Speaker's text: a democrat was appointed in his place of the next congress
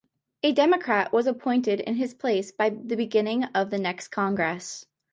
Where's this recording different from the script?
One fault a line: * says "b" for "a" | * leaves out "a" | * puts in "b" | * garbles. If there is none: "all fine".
* puts in "by the beginning"